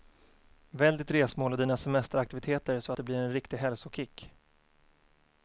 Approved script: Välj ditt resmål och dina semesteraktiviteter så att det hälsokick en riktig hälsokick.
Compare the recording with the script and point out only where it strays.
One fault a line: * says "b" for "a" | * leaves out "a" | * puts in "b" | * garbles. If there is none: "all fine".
* says "blir" for "hälsokick"